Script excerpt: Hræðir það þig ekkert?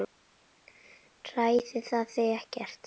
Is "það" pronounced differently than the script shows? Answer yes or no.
no